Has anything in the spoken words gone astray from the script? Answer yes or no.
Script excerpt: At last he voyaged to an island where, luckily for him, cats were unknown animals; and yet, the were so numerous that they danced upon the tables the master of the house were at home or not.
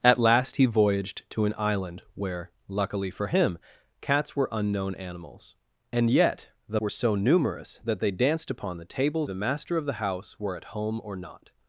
no